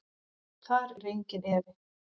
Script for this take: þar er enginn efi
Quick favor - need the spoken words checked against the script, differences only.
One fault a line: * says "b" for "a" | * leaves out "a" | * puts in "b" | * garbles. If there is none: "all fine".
all fine